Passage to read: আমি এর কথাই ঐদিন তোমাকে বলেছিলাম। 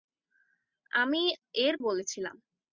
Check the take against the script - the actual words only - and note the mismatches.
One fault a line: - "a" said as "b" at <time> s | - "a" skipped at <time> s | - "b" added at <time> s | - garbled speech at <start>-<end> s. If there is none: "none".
- "কথাই ঐদিন তোমাকে" skipped at 1.7 s